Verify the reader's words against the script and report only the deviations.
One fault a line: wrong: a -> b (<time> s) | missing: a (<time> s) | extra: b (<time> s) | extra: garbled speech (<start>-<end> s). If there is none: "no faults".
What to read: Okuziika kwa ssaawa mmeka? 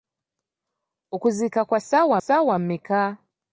extra: ssaawa (2.2 s)